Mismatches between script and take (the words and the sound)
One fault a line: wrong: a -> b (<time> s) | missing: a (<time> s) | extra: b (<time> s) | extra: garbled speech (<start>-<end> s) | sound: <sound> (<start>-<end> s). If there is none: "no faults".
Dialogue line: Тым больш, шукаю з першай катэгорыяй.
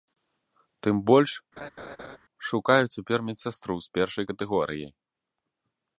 sound: laugh (1.6-2.2 s)
extra: цяпер медсястру (2.9 s)